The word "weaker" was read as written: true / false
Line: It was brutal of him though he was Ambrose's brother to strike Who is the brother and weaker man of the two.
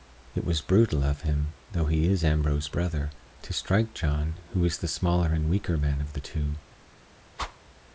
true